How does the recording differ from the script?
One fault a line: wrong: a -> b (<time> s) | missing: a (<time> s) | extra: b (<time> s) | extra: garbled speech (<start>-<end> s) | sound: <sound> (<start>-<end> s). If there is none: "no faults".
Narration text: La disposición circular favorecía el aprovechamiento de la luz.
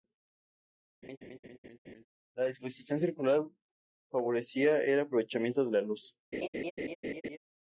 sound: laugh (1.0-2.1 s)
sound: laugh (6.3-7.4 s)